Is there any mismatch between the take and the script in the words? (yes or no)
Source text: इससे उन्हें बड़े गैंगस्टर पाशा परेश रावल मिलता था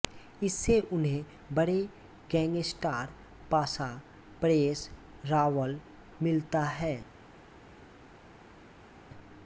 yes